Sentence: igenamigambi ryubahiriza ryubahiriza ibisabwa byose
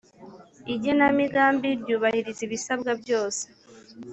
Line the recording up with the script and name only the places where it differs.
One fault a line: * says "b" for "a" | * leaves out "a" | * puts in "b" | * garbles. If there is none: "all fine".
* leaves out "ryubahiriza"